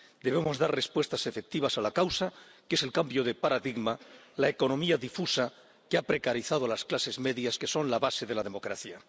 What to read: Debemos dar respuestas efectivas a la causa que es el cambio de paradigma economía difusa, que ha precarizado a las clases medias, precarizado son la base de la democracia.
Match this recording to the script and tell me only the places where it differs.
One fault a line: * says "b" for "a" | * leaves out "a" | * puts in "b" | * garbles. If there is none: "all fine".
* puts in "la"
* says "que" for "precarizado"